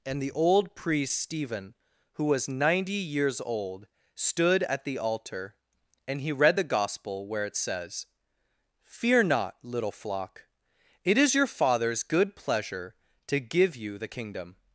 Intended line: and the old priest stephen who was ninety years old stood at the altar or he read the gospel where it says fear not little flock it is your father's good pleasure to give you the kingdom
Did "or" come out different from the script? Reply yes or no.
yes